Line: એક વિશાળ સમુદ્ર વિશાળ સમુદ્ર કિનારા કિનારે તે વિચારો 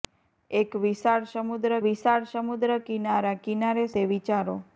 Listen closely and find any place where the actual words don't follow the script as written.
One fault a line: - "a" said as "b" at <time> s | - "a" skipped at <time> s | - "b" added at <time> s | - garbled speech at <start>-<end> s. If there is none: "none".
none